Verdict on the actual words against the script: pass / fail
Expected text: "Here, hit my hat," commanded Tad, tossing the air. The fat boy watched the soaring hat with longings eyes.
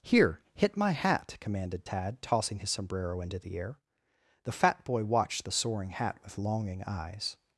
fail